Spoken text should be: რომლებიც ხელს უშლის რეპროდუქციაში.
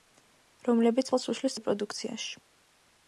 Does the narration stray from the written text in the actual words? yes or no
no